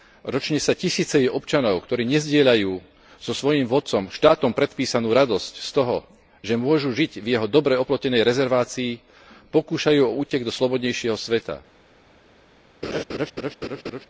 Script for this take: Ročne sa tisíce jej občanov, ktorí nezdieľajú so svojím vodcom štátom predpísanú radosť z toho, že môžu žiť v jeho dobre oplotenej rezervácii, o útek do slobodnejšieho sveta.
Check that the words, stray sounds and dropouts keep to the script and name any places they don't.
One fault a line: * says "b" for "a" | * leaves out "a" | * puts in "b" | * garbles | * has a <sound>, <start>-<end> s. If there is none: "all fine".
* puts in "pokúšajú"
* has a laugh, 12.8-14.1 s